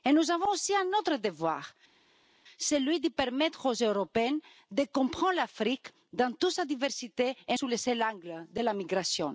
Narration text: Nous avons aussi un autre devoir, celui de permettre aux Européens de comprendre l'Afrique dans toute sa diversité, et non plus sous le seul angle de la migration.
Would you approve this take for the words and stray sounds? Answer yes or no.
no